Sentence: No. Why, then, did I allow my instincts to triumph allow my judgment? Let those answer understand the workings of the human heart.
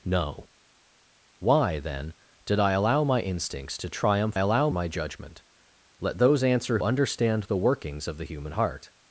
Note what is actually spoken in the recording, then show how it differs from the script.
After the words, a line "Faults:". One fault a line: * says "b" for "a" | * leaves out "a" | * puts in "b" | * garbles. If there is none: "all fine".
No. Why, then, did I allow my instincts to triumph allow my judgment? Let those answer understand the workings of the human heart.
Faults:
all fine